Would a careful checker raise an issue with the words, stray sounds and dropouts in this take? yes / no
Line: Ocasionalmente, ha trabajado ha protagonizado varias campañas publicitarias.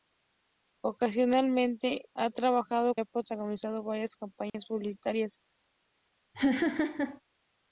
yes